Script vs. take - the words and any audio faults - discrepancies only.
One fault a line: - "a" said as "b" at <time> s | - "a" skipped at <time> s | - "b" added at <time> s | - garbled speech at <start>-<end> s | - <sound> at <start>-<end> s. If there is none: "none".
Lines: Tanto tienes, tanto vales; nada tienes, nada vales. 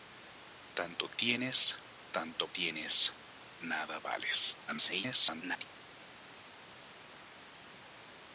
- "vales nada" skipped at 2.5 s
- garbled speech at 4.7-5.7 s